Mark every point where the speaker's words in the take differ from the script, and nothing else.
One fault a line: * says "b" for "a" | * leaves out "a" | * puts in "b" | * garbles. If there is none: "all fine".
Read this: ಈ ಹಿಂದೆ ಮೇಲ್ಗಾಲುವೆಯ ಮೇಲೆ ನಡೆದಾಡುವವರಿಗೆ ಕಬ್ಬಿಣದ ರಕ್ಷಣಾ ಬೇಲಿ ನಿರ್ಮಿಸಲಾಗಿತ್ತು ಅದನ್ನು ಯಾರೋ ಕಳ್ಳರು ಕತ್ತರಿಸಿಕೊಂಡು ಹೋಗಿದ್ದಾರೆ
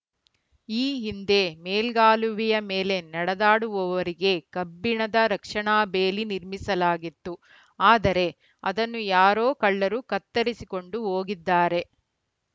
* puts in "ಆದರೆ"